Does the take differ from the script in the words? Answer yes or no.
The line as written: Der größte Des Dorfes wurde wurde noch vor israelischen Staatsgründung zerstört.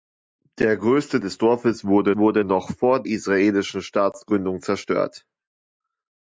no